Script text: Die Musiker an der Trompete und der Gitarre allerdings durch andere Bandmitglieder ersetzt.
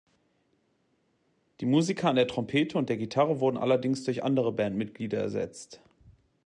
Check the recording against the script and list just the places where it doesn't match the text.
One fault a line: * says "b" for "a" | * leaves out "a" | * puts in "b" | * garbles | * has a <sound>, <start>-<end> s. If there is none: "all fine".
* puts in "wurden"